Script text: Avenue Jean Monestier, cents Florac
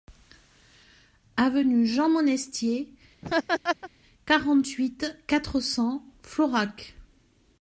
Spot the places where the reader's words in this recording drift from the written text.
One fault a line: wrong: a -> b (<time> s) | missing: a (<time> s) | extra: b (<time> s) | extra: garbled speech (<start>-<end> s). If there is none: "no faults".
extra: quarante huit quatre (4.3 s)